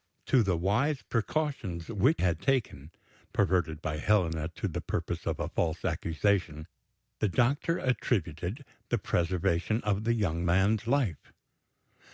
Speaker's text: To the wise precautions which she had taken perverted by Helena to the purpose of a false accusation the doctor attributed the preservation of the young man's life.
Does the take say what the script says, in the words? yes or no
no